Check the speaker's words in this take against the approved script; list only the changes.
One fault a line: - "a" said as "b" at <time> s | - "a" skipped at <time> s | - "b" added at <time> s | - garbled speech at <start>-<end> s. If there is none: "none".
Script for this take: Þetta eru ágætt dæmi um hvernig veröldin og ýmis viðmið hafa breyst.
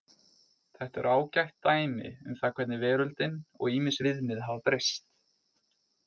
- "það" added at 2.4 s